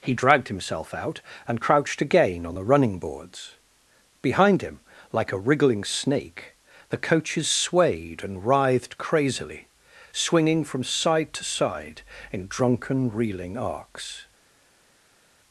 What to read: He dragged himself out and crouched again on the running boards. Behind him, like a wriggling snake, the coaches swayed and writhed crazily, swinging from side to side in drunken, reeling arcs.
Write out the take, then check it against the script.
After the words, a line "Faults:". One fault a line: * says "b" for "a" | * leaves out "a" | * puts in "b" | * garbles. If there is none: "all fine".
He dragged himself out and crouched again on the running boards. Behind him, like a wriggling snake, the coaches swayed and writhed crazily, swinging from side to side in drunken, reeling arcs.
Faults:
all fine